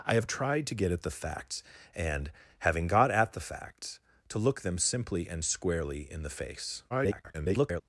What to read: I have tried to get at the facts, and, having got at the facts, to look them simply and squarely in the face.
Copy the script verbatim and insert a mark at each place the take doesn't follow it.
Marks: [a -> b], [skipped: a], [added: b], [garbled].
I have tried to get at the facts, and, having got at the facts, to look them simply and squarely in the face. [garbled]